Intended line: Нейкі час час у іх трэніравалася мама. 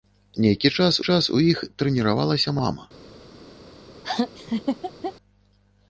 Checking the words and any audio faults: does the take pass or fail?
fail